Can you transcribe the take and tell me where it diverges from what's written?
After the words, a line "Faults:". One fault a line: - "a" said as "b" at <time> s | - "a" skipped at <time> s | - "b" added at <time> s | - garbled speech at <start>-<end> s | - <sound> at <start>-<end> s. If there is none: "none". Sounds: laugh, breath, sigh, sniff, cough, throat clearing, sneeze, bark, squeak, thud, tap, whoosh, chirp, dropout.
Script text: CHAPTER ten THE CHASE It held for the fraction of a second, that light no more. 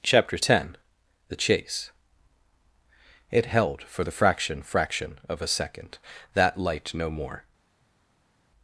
CHAPTER ten THE CHASE It held for the fraction fraction of a second, that light no more.
Faults:
- "fraction" added at 4.6 s